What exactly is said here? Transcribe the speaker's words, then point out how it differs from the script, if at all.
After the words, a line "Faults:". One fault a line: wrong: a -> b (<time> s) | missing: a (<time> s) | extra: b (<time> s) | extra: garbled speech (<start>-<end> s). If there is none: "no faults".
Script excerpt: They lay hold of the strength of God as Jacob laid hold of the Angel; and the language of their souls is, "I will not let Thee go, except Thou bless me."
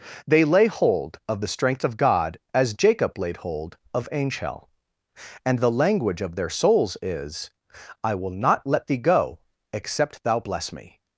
They lay hold of the strength of God as Jacob laid hold of Angel; and the language of their souls is, "I will not let Thee go, except Thou bless me."
Faults:
missing: the (4.1 s)